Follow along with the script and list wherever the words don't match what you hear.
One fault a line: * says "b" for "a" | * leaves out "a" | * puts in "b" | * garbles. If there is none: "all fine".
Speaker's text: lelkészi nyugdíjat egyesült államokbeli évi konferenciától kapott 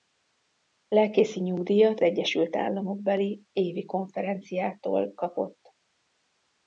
all fine